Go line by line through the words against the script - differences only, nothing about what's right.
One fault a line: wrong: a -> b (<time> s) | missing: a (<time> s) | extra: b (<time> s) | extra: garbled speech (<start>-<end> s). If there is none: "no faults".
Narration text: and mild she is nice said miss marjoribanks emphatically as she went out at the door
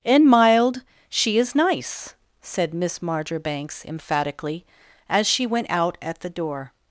no faults